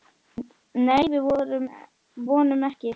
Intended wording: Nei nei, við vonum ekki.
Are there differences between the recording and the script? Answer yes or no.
yes